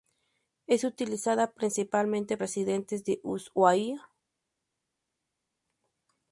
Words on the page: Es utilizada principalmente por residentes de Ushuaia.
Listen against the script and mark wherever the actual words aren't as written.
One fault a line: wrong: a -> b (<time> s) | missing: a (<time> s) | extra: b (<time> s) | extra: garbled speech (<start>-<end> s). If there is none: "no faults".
missing: por (2.4 s)